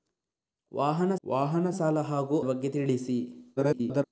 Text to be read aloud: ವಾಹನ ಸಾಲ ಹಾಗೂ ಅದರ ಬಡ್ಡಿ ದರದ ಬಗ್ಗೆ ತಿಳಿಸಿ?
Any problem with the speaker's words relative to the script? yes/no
yes